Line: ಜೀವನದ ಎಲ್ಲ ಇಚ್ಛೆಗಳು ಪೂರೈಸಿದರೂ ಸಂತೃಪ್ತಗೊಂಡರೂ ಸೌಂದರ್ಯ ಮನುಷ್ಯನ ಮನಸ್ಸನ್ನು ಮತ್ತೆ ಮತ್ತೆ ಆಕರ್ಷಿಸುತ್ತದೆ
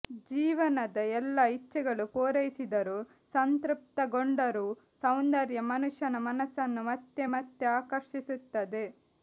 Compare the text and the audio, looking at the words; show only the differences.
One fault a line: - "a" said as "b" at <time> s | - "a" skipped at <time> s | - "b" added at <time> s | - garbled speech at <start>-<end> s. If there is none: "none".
none